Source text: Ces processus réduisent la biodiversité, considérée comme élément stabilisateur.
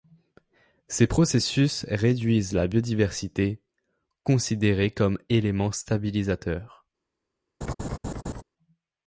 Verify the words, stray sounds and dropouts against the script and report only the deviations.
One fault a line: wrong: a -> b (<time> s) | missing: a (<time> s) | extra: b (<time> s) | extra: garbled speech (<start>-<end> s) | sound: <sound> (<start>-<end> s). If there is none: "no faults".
sound: laugh (7.6-8.4 s)